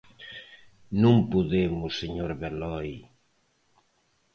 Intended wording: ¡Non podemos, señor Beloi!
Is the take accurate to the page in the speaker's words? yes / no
yes